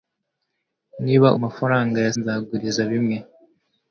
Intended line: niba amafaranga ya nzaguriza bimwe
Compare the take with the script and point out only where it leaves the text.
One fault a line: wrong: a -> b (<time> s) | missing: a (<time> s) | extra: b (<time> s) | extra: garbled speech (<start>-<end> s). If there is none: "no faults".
no faults